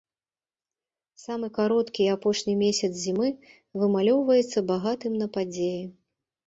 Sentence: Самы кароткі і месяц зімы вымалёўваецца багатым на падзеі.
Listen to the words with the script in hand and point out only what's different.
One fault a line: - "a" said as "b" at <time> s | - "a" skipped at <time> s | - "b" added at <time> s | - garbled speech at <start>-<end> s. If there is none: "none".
- "апошні" added at 2.1 s